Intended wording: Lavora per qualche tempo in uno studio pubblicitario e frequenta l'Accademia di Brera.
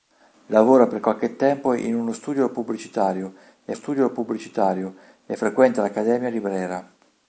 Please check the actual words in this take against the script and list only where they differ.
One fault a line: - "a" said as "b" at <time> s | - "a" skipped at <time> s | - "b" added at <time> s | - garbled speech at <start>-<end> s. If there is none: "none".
- "studio pubblicitario e" added at 3.7 s